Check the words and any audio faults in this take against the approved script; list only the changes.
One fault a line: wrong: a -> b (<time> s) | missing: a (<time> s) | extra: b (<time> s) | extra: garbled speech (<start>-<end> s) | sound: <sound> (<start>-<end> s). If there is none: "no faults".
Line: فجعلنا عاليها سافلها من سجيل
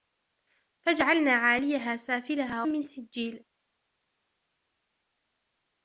no faults